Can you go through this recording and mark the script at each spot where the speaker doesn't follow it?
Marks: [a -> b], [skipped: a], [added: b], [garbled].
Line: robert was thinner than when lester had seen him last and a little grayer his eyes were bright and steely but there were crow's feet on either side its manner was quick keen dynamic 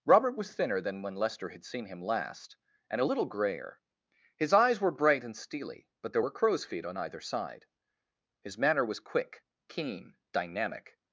robert was thinner than when lester had seen him last and a little grayer his eyes were bright and steely but there were crow's feet on either side [its -> his] manner was quick keen dynamic